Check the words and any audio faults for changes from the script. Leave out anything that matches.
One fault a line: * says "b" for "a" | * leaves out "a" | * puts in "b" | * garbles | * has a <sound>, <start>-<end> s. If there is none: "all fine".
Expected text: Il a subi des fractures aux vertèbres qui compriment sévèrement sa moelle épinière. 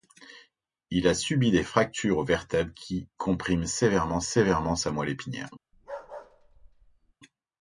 * puts in "sévèrement"
* has a bark, 5.7-7.1 s